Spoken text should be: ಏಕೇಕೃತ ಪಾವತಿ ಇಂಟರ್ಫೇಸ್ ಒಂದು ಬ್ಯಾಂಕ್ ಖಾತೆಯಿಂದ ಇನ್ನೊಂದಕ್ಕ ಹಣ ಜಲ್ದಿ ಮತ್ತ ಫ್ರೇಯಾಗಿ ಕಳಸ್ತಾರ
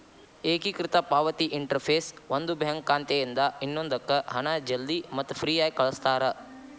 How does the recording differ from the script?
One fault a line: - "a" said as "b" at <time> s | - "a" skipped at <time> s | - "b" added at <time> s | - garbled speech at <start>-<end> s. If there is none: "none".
none